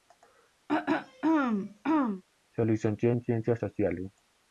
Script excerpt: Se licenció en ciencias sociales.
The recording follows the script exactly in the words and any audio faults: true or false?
false